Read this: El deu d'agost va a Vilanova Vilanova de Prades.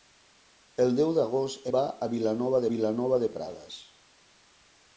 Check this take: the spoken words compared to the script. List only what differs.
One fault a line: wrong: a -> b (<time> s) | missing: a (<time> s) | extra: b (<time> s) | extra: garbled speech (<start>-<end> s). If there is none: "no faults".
no faults